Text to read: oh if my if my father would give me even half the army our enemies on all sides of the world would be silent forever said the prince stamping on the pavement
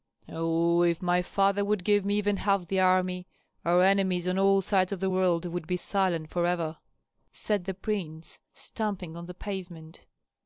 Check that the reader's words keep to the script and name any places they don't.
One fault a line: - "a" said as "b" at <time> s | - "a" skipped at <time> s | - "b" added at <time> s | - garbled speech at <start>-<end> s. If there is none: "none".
- "if my" skipped at 1.2 s